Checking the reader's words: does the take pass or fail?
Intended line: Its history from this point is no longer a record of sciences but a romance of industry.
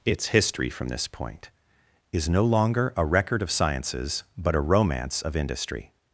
pass